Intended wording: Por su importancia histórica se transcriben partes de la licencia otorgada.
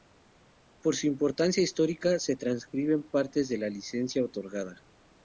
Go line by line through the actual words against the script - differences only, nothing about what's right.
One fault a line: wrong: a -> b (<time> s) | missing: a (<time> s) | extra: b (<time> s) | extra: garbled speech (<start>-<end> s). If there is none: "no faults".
no faults